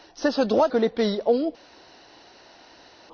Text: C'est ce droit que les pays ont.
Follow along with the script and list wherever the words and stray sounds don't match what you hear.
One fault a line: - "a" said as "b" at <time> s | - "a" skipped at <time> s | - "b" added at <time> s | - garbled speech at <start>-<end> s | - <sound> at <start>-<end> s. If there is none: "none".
none